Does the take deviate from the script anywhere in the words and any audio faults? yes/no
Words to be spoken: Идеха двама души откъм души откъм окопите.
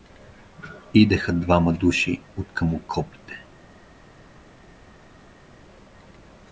yes